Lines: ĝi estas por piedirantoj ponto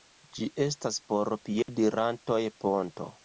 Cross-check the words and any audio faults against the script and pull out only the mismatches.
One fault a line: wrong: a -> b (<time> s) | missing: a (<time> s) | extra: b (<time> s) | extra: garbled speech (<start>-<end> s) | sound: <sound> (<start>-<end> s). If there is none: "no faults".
sound: dropout (1.6-1.7 s)